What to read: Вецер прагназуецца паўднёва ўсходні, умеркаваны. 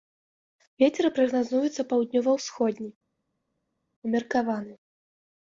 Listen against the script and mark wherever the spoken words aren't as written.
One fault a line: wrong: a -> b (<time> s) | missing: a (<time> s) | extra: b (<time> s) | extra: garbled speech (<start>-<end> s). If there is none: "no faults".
no faults